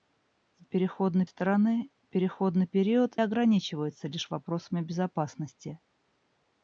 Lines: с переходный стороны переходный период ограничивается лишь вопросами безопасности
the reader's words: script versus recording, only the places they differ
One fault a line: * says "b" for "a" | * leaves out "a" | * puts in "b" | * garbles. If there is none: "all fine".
all fine